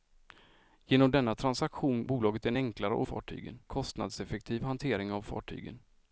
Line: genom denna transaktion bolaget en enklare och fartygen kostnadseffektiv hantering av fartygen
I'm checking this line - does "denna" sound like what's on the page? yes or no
yes